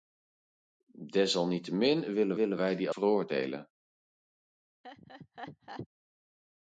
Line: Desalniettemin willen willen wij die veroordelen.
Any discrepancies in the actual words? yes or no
no